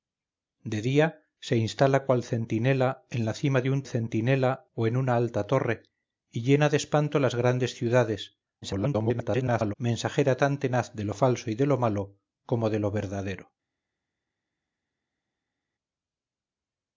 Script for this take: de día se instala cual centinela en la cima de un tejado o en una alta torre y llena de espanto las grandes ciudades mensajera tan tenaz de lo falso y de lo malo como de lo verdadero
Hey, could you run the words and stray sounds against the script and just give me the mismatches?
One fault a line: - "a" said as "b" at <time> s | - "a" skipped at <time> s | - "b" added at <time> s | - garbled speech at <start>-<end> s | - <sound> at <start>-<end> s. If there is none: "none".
- "tejado" said as "centinela" at 3.9 s
- garbled speech at 8.6-9.7 s